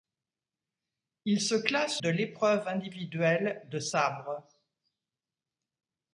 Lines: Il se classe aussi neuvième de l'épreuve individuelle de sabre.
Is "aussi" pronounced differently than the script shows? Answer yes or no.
yes